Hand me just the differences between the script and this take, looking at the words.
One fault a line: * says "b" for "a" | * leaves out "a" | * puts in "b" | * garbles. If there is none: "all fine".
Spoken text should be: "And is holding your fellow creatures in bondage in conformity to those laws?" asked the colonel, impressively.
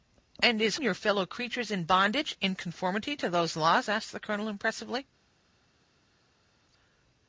* leaves out "holding"